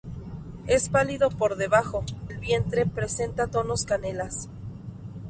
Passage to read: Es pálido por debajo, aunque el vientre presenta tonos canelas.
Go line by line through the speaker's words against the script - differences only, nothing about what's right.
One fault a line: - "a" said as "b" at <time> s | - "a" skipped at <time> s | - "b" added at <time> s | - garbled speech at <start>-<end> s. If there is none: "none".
- "aunque" skipped at 2.0 s